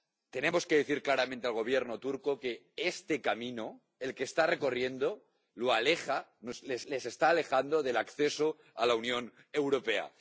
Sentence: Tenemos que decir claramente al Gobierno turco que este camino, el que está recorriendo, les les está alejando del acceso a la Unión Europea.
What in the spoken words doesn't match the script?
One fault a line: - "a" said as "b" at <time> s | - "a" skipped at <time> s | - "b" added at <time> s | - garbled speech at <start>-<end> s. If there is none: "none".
none